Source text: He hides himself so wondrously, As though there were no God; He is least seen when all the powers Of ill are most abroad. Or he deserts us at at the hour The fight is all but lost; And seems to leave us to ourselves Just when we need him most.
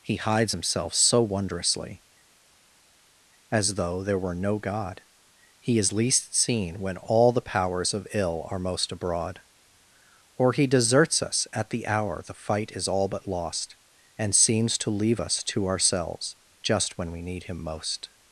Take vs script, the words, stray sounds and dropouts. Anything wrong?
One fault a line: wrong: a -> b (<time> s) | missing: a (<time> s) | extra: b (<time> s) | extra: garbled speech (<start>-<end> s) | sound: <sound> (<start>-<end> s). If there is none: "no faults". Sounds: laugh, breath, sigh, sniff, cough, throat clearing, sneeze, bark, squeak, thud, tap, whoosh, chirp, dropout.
missing: at (11.7 s)